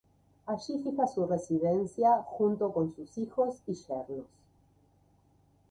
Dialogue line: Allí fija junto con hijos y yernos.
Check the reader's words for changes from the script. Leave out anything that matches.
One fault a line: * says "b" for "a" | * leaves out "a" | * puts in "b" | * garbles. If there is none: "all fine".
* puts in "su residencia"
* puts in "sus"